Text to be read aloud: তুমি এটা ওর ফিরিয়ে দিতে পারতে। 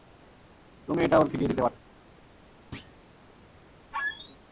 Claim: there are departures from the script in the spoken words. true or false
false